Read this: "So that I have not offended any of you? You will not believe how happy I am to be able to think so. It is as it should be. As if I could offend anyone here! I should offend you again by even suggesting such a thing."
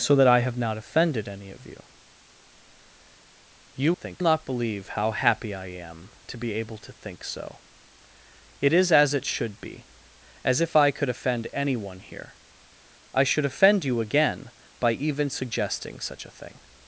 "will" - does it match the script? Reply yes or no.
no